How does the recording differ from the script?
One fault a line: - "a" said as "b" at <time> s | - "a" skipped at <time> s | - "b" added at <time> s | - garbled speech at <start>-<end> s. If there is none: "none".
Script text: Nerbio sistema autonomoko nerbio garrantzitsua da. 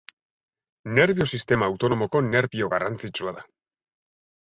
none